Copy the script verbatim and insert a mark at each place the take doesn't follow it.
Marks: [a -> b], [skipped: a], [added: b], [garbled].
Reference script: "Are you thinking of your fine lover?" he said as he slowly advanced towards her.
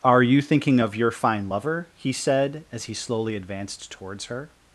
"Are you thinking of your fine lover?" he said as he slowly advanced towards her.